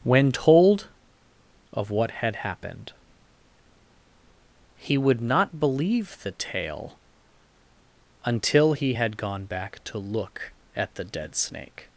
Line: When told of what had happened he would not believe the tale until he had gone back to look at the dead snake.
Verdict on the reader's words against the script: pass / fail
pass